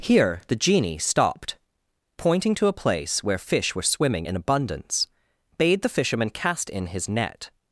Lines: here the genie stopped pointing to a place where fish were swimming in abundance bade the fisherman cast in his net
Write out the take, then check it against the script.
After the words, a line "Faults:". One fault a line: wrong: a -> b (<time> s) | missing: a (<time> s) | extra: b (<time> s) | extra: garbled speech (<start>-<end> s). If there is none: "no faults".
here the genie stopped pointing to a place where fish were swimming in abundance bade the fisherman cast in his net
Faults:
no faults